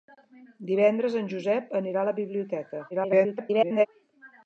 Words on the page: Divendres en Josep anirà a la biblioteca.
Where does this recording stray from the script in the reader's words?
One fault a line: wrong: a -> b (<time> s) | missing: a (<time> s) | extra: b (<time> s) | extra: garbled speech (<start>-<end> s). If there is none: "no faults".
extra: garbled speech (2.9-3.9 s)